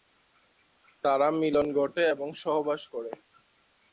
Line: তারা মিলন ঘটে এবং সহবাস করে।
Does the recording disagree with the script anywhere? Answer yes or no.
no